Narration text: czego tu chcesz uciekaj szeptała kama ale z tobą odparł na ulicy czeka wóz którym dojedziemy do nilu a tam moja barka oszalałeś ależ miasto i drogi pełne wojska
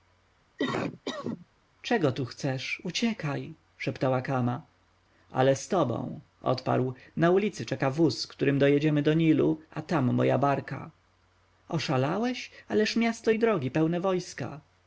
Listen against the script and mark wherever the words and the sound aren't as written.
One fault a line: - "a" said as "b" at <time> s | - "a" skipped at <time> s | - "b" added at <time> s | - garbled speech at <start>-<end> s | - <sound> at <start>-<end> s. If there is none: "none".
- cough at 0.6-1.5 s